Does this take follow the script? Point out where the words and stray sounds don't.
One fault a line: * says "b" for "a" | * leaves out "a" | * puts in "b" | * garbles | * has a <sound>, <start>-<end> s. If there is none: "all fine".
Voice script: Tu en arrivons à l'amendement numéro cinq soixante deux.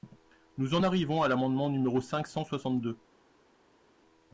* says "Nous" for "Tu"
* puts in "cent"